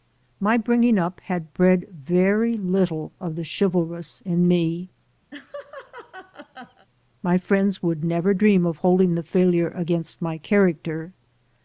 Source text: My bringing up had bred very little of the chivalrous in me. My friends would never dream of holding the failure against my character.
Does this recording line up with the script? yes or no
yes